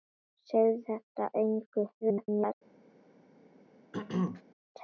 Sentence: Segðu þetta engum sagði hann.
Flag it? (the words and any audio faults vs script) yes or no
yes